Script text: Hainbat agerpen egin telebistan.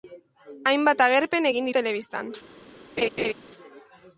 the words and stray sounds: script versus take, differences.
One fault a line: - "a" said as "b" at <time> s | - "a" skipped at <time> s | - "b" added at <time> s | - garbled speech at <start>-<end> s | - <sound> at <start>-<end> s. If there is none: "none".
- laugh at 3.0-3.3 s